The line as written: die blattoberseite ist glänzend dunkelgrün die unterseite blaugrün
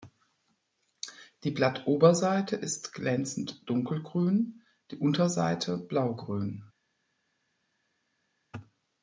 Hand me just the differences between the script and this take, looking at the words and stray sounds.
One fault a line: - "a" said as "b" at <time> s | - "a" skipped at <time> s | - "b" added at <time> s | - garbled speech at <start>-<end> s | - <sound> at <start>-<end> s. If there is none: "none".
none